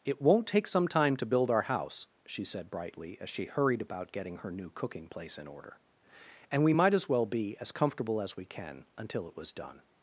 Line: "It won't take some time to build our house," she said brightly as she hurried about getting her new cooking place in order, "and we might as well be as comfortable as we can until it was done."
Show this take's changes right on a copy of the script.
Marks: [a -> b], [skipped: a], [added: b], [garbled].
"It won't take some time to build our house," she said brightly as she hurried about getting her new cooking place in order, "and we might as well be as comfortable as we can until it was done."